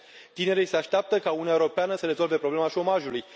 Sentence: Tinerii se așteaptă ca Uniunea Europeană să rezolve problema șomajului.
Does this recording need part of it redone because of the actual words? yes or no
no